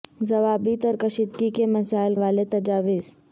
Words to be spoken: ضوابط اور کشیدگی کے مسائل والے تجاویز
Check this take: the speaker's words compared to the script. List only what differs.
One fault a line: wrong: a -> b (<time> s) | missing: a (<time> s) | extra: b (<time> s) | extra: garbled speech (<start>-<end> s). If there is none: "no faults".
no faults